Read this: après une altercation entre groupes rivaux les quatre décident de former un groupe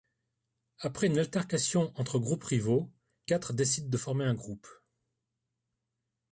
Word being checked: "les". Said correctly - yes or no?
no